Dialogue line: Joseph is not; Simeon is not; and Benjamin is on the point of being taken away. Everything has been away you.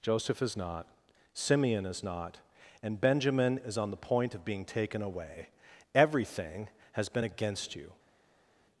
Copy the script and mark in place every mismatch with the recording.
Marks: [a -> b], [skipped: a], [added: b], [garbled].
Joseph is not; Simeon is not; and Benjamin is on the point of being taken away. Everything has been [away -> against] you.